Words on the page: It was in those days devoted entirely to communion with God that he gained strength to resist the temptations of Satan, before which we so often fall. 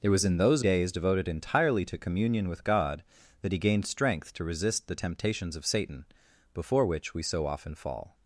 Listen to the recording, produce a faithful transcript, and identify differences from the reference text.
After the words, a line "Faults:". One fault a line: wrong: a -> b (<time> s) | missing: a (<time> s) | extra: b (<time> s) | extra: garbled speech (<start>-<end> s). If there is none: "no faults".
It was in those days devoted entirely to communion with God that he gained strength to resist the temptations of Satan, before which we so often fall.
Faults:
no faults